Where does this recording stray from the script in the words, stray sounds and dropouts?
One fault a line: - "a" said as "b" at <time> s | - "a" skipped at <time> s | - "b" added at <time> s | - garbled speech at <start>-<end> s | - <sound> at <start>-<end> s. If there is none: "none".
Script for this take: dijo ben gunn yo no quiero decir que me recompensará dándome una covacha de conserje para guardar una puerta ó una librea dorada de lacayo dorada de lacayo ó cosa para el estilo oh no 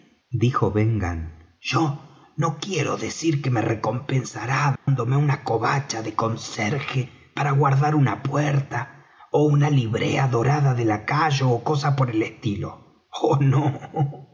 - dropout at 4.8-4.9 s
- "dorada de lacayo" skipped at 11.5 s
- "para" said as "por" at 11.9 s